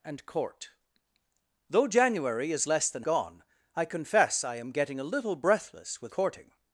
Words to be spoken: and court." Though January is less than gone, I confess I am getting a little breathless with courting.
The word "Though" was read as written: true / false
true